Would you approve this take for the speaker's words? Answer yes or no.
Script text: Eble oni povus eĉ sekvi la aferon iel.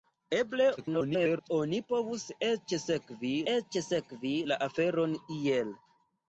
no